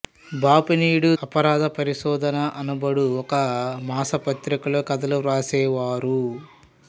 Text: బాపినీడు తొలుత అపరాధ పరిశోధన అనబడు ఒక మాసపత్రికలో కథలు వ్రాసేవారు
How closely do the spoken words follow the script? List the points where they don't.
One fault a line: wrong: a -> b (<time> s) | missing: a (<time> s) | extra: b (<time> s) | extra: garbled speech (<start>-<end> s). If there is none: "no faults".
missing: తొలుత (1.1 s)